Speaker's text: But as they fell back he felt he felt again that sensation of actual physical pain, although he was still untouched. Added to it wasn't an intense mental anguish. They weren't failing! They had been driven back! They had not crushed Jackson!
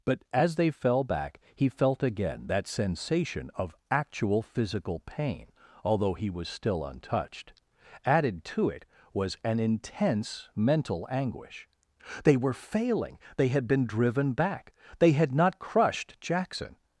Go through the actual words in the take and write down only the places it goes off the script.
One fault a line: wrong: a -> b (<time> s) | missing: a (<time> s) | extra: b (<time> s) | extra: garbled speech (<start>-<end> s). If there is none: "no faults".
missing: he felt (2.0 s)
wrong: wasn't -> was (9.1 s)
wrong: weren't -> were (12.3 s)